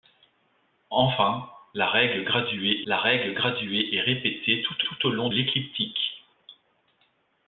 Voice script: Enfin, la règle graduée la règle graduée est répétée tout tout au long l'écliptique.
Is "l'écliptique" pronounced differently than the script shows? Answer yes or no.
no